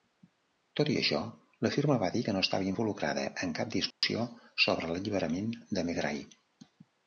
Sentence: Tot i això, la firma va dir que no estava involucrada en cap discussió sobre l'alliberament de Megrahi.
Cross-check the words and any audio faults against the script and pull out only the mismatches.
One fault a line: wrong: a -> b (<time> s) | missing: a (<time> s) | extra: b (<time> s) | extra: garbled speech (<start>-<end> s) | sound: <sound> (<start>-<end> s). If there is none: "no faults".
sound: dropout (3.9-4.0 s)